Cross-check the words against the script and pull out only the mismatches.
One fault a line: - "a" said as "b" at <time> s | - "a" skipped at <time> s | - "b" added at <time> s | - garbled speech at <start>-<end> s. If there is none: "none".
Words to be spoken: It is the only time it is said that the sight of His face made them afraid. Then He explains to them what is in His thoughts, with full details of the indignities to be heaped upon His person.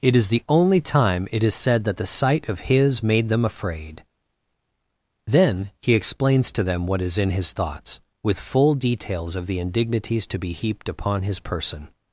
- "face" skipped at 3.0 s